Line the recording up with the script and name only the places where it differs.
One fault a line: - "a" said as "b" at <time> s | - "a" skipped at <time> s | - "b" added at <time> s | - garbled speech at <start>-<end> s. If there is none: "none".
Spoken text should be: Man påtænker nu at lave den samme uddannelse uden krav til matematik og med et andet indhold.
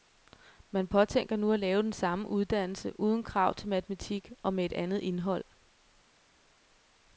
none